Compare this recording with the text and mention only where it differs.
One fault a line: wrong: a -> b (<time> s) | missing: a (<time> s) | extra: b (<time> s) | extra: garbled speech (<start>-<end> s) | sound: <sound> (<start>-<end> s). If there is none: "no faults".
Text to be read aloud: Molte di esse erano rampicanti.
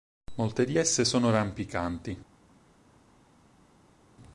wrong: erano -> sono (1.0 s)